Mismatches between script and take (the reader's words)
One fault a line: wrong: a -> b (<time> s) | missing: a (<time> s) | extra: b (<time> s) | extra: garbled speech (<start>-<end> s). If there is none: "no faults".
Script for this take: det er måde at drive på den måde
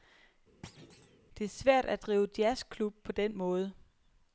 wrong: måde -> svært (1.5 s)
extra: jazzklub (2.4 s)